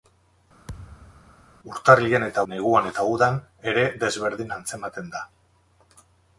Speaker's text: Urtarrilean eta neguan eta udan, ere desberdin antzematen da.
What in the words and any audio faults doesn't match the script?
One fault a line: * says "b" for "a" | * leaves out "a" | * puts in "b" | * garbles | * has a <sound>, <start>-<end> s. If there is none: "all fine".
* has a thud, 0.7-1.4 s